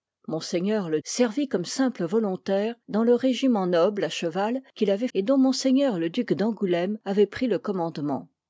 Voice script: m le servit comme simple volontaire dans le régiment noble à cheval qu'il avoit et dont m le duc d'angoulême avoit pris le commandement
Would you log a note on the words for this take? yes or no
no